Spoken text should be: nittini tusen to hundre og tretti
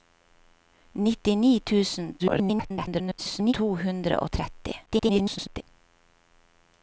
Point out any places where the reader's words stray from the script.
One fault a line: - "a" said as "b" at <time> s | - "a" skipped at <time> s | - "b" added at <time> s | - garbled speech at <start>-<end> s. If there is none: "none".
- garbled speech at 2.2-3.5 s
- garbled speech at 4.9-5.6 s